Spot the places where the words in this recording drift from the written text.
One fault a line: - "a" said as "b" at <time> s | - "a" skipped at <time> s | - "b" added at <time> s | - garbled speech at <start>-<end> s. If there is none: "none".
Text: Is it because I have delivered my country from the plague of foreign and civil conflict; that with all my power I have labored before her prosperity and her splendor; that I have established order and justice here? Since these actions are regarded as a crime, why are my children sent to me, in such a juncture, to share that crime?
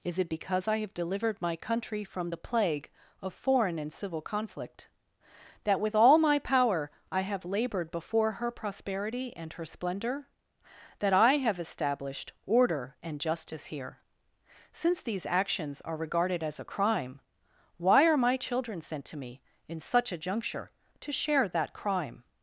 none